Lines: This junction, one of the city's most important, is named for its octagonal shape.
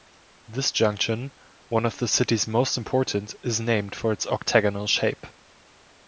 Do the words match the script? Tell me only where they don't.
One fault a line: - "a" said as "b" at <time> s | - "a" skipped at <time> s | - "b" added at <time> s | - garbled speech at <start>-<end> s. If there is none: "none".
none